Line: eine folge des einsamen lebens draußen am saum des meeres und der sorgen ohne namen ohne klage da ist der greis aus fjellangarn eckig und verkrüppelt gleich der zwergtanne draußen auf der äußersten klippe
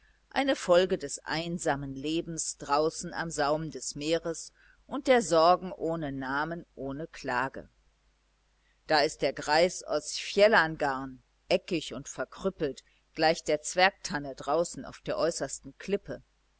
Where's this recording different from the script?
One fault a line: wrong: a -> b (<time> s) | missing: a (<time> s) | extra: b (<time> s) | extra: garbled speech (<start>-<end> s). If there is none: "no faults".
no faults